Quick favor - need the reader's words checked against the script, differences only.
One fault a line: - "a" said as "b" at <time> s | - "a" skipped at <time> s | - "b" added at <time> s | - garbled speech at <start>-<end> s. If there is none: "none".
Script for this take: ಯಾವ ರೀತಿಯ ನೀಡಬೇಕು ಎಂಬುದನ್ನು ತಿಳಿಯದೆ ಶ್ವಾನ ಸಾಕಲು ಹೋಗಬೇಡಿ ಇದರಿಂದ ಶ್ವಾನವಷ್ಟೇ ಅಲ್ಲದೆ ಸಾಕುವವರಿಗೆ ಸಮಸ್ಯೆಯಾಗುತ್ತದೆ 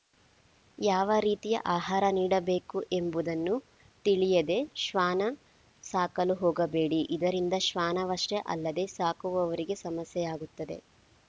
- "ಆಹಾರ" added at 1.7 s